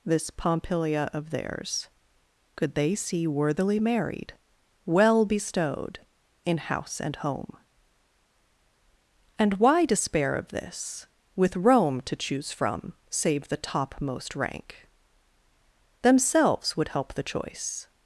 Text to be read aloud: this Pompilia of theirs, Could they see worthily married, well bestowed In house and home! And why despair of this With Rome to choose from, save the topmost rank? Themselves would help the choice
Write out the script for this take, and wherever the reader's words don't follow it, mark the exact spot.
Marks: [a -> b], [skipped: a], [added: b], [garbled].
this Pompilia of theirs, Could they see worthily married, well bestowed In house and home! And why despair of this With Rome to choose from, save the topmost rank? Themselves would help the choice